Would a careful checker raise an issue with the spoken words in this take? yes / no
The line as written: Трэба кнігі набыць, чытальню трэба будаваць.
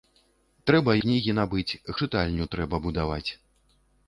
no